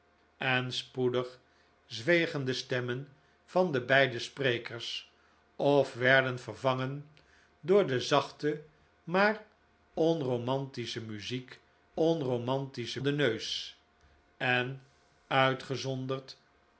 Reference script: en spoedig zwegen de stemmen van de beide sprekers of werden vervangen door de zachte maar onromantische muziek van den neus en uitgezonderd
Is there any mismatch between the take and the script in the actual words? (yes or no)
yes